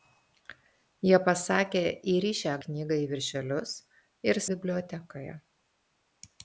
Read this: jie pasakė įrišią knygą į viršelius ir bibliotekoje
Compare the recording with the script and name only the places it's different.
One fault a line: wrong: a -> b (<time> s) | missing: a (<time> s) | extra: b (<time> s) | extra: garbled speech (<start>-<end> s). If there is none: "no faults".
no faults